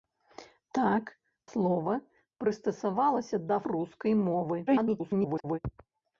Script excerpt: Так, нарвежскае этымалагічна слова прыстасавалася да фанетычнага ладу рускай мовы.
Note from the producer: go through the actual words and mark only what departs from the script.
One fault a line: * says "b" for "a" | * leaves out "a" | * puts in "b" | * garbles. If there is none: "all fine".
* leaves out "нарвежскае этымалагічна"
* leaves out "фанетычнага ладу"
* garbles